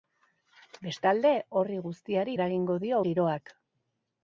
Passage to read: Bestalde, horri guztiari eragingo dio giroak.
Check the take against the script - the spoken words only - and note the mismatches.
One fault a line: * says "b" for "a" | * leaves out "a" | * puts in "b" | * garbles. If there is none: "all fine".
all fine